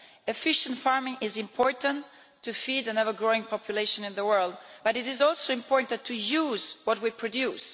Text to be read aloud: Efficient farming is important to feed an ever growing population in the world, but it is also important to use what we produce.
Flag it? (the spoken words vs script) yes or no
no